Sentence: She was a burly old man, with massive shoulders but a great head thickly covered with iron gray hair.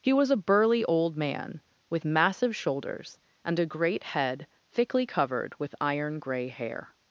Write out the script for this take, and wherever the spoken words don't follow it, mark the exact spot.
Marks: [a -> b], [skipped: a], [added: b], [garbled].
[She -> He] was a burly old man, with massive shoulders [but -> and] a great head thickly covered with iron gray hair.